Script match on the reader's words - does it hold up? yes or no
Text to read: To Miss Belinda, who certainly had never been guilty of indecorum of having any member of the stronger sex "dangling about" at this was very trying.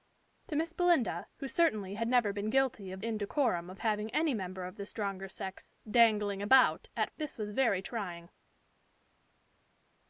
yes